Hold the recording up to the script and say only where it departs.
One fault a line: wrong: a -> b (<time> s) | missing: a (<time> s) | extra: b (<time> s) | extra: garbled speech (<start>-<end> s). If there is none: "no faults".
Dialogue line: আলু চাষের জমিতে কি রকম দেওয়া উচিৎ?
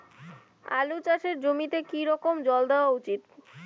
extra: জল (2.5 s)